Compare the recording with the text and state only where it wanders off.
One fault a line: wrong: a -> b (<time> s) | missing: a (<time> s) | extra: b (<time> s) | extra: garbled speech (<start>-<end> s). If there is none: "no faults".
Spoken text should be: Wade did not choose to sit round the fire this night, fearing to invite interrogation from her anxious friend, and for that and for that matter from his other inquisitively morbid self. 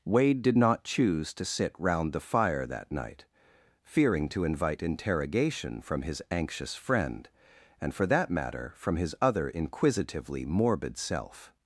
wrong: this -> that (2.7 s)
wrong: her -> his (6.0 s)
missing: and for that (8.3 s)